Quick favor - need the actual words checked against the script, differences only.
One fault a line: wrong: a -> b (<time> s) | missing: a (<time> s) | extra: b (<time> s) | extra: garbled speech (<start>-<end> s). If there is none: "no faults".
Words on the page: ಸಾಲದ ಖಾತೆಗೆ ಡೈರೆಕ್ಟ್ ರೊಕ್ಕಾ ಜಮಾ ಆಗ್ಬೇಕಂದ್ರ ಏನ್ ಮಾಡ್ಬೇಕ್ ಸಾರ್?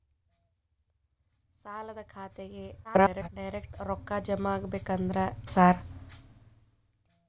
extra: garbled speech (2.8-3.3 s)
missing: ಏನ್ ಮಾಡ್ಬೇಕ್ (5.2 s)